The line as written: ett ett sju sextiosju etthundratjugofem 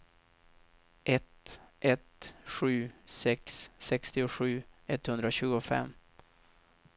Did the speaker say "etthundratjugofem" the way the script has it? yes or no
yes